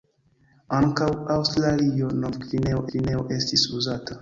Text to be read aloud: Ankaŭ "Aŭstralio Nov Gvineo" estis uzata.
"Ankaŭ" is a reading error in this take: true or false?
false